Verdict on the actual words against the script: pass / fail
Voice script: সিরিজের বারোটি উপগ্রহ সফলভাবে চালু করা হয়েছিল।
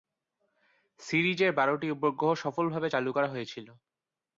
pass